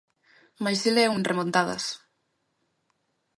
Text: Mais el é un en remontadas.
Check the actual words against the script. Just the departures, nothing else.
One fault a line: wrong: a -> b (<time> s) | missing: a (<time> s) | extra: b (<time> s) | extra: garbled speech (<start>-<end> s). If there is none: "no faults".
no faults